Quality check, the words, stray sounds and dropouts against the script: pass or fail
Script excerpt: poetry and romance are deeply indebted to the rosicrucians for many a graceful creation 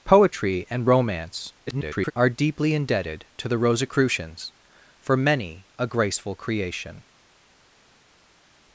fail